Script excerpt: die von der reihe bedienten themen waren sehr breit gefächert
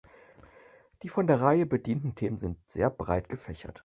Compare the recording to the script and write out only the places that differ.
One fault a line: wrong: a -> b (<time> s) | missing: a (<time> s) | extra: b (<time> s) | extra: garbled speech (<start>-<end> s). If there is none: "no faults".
wrong: waren -> sind (2.4 s)